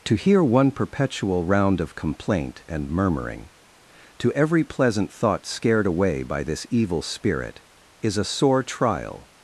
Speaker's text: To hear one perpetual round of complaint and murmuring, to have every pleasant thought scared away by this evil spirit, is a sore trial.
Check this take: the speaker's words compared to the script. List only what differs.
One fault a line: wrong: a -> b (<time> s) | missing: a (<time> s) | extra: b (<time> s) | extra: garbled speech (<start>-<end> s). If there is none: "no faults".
missing: have (4.3 s)